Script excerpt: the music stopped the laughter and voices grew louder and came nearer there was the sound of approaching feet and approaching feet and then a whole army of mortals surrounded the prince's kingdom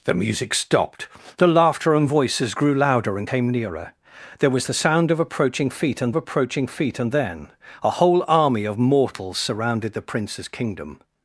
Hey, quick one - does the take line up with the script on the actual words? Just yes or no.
yes